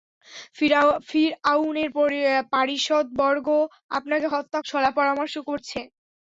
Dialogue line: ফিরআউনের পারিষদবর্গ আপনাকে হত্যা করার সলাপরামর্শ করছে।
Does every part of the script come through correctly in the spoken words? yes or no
no